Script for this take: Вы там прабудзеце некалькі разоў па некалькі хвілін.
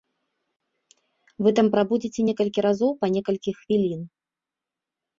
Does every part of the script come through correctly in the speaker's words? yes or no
yes